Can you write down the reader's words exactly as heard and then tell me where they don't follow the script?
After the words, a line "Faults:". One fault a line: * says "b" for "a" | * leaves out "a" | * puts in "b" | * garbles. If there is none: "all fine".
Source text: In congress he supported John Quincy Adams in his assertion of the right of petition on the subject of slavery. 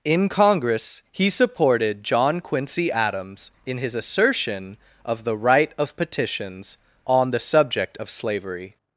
In congress he supported John Quincy Adams in his assertion of the right of petitions on the subject of slavery.
Faults:
* says "petitions" for "petition"